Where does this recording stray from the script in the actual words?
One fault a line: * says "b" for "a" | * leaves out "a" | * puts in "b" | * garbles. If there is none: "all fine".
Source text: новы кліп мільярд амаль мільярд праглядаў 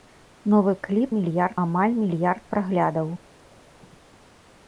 all fine